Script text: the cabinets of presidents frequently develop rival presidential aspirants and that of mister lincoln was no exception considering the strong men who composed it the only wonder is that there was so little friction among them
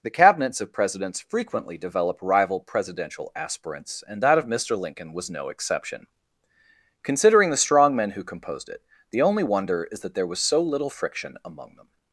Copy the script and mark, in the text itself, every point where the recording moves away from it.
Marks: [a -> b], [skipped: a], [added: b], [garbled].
the cabinets of presidents frequently develop rival presidential aspirants and that of mister lincoln was no exception considering the strong men who composed it the only wonder is that there was so little friction among them